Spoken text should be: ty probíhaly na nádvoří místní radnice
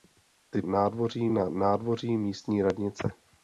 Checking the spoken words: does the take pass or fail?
fail